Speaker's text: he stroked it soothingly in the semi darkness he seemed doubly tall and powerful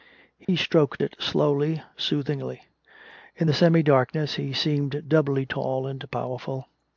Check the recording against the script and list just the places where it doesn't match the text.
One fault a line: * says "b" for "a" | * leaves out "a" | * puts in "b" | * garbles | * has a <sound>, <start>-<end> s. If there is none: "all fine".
* has a dropout, 0.4-0.5 s
* puts in "slowly"